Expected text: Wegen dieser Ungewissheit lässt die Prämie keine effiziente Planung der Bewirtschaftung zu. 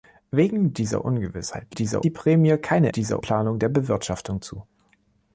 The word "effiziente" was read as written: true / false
false